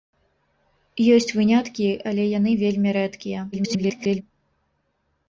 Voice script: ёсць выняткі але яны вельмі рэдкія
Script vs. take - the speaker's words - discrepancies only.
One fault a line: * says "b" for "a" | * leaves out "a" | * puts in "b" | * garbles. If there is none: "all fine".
* garbles